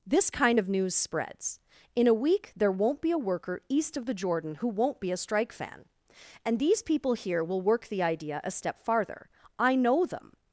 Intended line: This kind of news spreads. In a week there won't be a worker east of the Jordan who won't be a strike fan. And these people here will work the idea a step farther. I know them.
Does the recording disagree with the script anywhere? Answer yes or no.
no